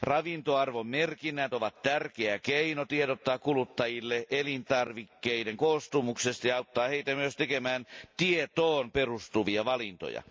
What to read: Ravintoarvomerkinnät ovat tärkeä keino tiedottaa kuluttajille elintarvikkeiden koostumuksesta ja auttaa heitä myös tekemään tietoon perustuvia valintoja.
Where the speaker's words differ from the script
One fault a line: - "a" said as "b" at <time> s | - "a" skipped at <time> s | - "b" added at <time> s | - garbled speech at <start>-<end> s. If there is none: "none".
none